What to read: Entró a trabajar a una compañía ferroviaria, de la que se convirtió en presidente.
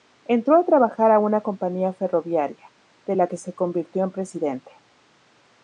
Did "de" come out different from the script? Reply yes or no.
no